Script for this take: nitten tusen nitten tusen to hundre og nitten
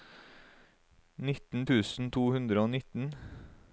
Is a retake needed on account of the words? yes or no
yes